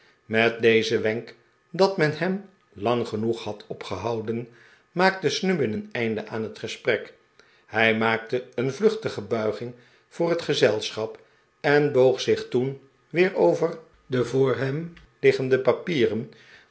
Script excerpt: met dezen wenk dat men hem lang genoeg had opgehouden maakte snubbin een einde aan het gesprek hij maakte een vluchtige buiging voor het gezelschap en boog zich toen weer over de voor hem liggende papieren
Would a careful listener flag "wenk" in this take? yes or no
no